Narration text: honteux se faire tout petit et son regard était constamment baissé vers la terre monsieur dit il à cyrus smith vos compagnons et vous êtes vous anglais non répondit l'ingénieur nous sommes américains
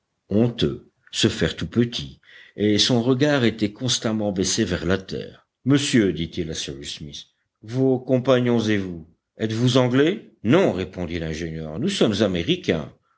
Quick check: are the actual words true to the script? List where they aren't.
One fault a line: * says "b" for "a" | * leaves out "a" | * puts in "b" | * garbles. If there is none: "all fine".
all fine